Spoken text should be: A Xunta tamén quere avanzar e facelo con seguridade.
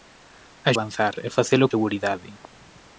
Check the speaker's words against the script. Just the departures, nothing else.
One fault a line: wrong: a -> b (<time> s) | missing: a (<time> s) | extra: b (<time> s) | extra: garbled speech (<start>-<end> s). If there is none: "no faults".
missing: Xunta tamén quere (0.7 s)
missing: con (1.7 s)